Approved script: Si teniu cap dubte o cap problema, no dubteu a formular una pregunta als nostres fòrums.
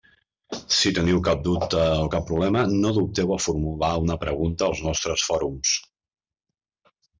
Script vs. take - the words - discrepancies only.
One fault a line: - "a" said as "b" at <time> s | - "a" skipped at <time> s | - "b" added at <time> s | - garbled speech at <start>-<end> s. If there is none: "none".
none